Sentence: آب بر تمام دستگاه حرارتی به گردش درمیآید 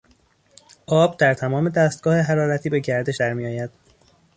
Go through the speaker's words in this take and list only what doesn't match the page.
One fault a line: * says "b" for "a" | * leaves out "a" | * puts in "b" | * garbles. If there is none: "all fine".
* says "در" for "بر"